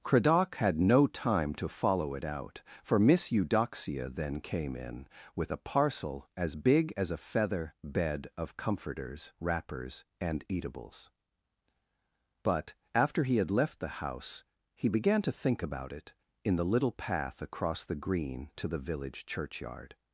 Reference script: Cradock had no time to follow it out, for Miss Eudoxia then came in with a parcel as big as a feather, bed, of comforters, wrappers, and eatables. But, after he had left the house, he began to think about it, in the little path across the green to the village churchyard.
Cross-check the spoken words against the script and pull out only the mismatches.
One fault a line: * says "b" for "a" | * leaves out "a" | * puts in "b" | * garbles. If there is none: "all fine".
all fine